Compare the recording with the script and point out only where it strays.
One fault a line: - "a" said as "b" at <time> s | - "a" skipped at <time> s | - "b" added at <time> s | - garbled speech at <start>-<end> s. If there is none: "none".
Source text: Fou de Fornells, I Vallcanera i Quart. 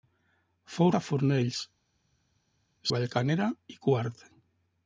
none